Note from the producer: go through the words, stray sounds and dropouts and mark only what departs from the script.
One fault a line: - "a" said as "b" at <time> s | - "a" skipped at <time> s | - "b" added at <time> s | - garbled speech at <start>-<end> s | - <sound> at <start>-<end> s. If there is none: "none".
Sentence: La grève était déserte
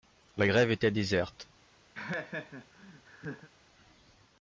- laugh at 1.9-3.5 s